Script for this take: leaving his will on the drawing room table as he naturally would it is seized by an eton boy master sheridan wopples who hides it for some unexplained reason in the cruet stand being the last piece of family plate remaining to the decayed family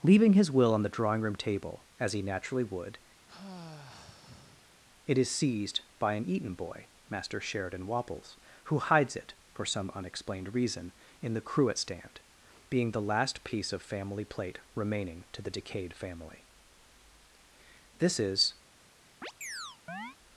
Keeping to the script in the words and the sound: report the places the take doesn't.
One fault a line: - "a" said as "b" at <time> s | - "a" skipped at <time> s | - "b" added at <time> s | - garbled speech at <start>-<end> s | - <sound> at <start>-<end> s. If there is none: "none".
- sigh at 3.3-4.8 s
- "this is" added at 18.0 s
- chirp at 19.2-20.2 s